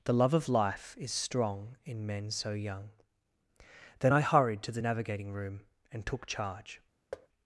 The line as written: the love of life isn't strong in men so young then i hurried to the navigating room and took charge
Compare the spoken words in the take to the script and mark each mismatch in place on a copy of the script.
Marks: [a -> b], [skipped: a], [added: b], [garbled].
the love of life [isn't -> is] strong in men so young then i hurried to the navigating room and took charge